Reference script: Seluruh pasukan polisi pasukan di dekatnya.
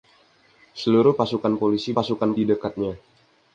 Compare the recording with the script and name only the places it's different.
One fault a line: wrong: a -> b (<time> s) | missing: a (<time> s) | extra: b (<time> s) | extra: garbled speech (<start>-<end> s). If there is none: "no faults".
no faults